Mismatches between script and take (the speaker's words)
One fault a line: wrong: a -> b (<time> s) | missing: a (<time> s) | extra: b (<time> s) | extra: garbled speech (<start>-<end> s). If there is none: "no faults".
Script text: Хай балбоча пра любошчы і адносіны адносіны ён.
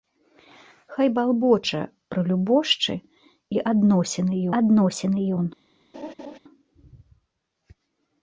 no faults